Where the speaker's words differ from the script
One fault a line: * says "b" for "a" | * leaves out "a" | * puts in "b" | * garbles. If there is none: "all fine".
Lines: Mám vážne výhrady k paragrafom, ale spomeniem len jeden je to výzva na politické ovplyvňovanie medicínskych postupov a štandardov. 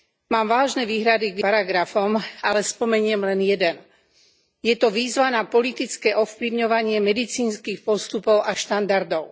all fine